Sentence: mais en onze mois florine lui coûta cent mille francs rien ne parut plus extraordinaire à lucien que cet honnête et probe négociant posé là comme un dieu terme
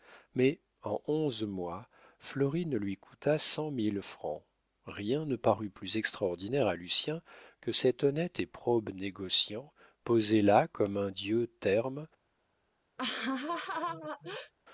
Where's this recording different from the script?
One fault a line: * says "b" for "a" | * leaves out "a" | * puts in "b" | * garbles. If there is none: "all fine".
all fine